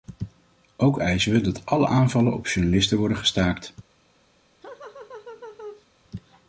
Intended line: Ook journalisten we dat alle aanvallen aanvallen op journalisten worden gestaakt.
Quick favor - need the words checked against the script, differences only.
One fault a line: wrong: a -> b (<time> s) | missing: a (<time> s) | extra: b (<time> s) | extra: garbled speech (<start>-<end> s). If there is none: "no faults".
wrong: journalisten -> eisen (1.0 s)
missing: aanvallen (2.3 s)